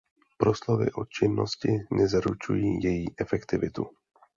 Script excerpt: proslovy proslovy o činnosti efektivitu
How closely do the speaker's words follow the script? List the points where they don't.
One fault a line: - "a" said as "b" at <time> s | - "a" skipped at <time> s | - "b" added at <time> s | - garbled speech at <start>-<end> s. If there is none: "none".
- "proslovy" skipped at 0.9 s
- "nezaručují její" added at 1.9 s